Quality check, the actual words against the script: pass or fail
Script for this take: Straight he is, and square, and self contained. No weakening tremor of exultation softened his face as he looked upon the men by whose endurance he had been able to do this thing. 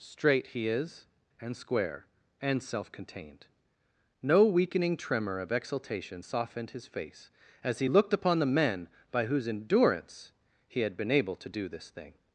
pass